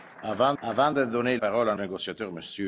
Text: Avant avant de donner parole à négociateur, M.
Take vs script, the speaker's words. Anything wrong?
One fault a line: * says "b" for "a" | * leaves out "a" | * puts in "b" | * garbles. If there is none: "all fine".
all fine